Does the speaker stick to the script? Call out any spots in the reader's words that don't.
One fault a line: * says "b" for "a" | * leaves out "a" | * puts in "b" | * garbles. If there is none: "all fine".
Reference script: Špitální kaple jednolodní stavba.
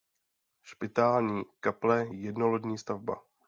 all fine